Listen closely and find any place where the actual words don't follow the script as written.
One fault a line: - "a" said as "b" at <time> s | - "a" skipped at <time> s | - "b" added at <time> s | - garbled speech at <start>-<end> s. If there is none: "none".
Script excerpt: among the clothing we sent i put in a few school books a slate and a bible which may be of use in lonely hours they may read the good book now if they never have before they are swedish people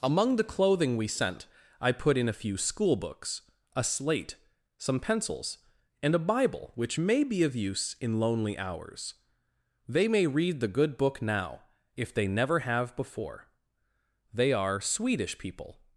- "some pencils" added at 4.8 s